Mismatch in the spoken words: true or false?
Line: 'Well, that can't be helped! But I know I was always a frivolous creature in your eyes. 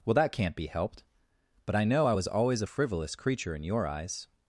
false